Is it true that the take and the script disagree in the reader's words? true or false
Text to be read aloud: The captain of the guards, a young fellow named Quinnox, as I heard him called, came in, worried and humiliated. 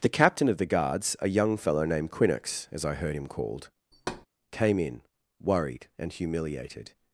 false